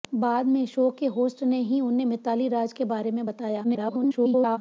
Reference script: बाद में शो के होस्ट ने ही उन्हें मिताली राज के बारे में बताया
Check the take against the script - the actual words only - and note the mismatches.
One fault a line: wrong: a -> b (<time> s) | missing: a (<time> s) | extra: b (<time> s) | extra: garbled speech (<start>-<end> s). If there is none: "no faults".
extra: garbled speech (3.6-4.6 s)